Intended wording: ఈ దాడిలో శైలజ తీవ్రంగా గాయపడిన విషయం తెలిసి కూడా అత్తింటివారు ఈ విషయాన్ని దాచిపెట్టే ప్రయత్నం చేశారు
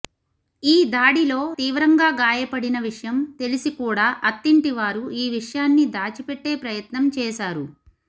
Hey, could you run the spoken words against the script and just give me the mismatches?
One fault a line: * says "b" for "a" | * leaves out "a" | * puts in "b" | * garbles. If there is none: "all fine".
* leaves out "శైలజ"